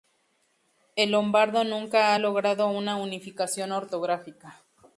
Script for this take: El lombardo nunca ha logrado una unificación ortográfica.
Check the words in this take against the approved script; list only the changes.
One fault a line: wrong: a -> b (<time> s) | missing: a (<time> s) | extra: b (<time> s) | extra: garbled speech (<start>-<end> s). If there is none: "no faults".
no faults